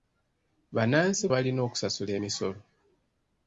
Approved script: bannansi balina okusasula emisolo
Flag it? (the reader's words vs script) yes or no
no